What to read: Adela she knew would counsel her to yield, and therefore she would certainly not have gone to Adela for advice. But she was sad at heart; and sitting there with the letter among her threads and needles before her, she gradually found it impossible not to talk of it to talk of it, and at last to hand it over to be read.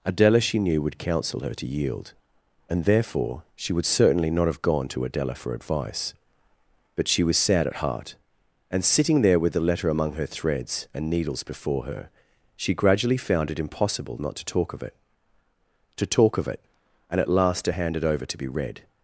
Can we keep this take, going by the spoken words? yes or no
yes